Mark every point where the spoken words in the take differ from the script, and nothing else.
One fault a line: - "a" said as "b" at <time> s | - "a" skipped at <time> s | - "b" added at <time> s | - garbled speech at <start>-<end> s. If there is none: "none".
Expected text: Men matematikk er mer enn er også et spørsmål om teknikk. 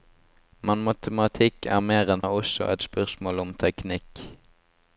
none